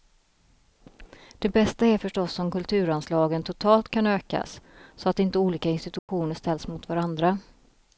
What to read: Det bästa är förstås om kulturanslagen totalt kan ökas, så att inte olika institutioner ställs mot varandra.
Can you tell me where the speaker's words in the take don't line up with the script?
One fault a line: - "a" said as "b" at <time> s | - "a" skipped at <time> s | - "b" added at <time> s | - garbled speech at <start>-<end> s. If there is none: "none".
none